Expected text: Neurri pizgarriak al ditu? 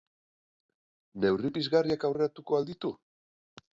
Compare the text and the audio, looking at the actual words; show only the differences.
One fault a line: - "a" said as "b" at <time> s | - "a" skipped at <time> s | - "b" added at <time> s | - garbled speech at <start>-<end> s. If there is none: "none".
- "aurreratuko" added at 2.1 s